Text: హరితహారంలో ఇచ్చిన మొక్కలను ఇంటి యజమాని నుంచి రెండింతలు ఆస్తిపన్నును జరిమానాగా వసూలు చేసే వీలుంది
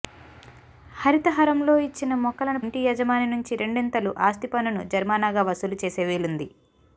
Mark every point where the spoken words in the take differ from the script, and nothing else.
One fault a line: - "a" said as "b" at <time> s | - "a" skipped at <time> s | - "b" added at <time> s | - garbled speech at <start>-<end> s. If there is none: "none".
none